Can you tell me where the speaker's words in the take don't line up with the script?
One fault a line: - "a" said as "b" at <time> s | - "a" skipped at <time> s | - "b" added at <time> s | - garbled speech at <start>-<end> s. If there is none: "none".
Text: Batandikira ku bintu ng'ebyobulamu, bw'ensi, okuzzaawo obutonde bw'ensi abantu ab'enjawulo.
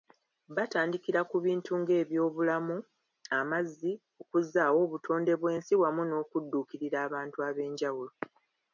- "bw'ensi" said as "amazzi" at 3.4 s
- "wamu n'okudduukirira" added at 5.8 s